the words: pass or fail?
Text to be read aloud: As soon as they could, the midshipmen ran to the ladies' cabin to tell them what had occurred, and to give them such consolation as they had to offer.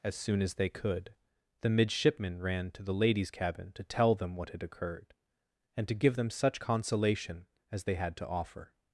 pass